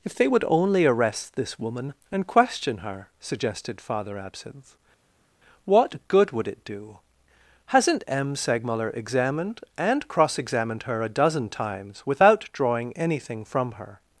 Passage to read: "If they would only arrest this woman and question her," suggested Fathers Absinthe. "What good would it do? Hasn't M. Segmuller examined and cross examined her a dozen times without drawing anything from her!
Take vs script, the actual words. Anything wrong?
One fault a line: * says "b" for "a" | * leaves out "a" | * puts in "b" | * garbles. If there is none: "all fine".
* says "Father" for "Fathers"